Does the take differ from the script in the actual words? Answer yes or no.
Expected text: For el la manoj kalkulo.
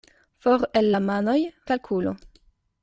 no